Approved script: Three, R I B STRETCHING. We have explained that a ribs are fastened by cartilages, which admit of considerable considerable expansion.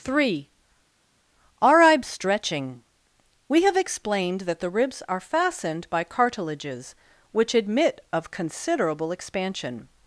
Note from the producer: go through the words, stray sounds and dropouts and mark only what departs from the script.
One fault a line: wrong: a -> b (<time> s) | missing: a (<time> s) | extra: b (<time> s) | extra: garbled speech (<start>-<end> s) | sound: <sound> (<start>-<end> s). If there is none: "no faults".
wrong: a -> the (4.6 s)
missing: considerable (9.1 s)